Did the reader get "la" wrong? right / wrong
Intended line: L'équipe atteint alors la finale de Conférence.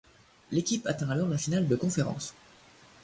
right